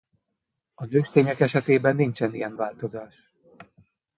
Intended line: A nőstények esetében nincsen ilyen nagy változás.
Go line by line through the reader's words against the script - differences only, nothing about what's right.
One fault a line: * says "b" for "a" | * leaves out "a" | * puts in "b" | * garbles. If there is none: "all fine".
* leaves out "nagy"